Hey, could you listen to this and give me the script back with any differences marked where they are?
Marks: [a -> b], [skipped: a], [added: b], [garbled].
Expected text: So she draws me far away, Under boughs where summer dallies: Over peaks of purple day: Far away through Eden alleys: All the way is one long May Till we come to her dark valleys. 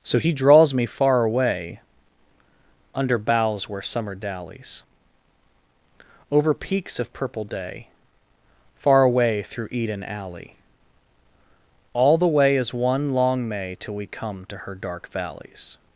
So [she -> he] draws me far away, Under boughs where summer dallies: Over peaks of purple day: Far away through Eden [alleys: -> alley] All the way is one long May Till we come to her dark valleys.